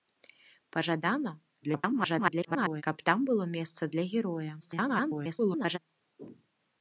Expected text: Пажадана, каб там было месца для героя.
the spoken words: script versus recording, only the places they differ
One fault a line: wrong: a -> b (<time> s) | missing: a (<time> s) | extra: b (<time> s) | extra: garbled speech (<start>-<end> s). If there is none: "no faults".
extra: garbled speech (1.6-2.8 s)
extra: garbled speech (4.6-5.8 s)